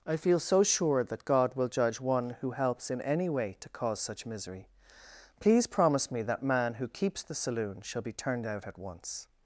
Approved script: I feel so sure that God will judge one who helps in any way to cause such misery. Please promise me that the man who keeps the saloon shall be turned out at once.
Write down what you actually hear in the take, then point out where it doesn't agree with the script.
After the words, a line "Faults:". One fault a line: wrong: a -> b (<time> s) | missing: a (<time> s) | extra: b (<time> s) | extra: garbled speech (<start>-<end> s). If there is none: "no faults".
I feel so sure that God will judge one who helps in any way to cause such misery. Please promise me that man who keeps the saloon shall be turned out at once.
Faults:
missing: the (6.4 s)